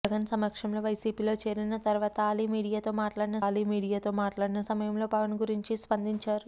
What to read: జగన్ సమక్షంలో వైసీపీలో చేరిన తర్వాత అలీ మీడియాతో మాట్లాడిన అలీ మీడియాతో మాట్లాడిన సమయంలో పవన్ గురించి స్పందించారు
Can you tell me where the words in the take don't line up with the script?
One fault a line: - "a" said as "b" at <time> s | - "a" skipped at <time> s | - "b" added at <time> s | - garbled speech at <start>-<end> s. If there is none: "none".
none